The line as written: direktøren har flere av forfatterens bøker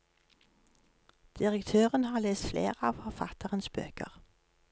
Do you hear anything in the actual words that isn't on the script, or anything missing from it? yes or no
yes